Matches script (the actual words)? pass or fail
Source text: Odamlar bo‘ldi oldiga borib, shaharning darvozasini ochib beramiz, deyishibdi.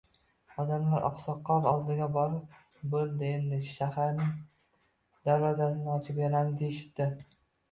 fail